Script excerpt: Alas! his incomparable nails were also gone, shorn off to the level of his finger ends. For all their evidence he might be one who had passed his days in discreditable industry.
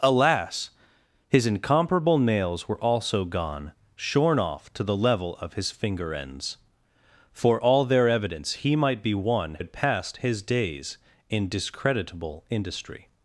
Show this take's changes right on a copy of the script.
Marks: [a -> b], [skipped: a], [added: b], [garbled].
Alas! his incomparable nails were also gone, shorn off to the level of his finger ends. For all their evidence he might be one [skipped: who] had passed his days in discreditable industry.